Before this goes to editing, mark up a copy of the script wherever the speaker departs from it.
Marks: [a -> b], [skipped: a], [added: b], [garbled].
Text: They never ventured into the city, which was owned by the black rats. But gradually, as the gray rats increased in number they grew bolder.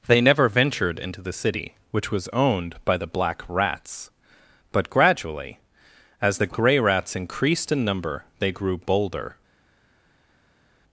They never ventured into the city, which was owned by the black rats. But gradually, as the gray rats increased in number they grew bolder.